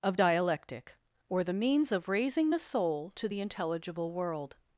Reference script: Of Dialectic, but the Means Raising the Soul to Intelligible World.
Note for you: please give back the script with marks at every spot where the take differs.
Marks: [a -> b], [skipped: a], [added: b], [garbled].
Of Dialectic, [but -> or] the Means [added: of] Raising the Soul to [added: the] Intelligible World.